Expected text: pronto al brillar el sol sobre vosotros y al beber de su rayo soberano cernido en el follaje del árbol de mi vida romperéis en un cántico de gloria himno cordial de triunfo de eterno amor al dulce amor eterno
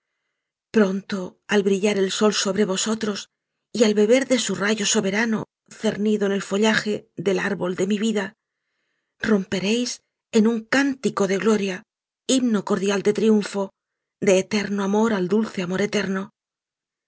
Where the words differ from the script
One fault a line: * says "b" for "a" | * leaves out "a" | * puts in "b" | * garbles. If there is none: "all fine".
all fine